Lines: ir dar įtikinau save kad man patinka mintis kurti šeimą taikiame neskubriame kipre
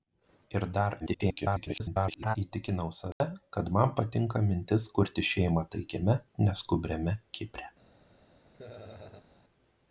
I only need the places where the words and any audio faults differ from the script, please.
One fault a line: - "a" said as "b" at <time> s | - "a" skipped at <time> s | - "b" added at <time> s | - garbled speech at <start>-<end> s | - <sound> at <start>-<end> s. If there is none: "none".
- garbled speech at 1.0-2.4 s
- dropout at 3.1-3.2 s
- laugh at 8.5-9.3 s